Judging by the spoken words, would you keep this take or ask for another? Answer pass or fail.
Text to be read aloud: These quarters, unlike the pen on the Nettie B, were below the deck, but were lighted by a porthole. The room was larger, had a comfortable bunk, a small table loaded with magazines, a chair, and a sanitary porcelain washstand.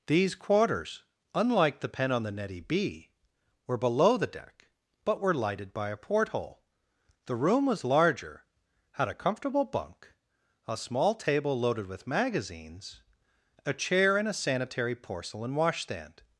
pass